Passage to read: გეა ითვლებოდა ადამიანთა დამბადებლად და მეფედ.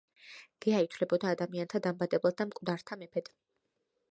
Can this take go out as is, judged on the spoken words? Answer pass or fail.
fail